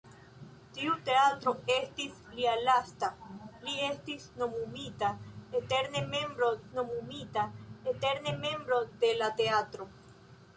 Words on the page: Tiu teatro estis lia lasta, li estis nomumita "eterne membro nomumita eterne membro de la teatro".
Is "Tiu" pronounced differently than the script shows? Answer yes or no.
no